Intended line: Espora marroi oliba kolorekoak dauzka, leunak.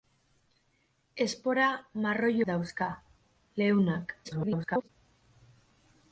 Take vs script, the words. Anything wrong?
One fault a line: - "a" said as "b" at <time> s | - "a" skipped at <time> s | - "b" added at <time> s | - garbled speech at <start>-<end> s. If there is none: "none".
- "oliba kolorekoak" skipped at 2.3 s
- garbled speech at 4.2-4.9 s